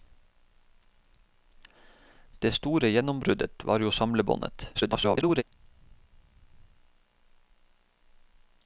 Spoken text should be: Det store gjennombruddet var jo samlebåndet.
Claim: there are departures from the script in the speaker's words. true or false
true